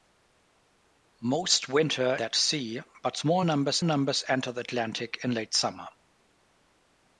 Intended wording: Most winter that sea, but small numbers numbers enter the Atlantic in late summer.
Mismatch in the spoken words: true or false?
false